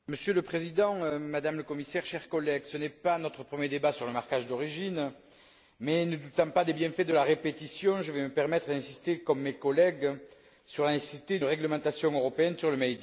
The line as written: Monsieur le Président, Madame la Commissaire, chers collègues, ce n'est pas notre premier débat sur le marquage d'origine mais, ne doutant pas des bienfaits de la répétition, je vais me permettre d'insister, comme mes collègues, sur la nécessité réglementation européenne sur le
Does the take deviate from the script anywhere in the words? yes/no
no